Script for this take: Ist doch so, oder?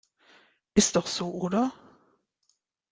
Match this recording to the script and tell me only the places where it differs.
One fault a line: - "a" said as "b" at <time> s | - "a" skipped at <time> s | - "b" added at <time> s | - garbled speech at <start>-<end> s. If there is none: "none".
none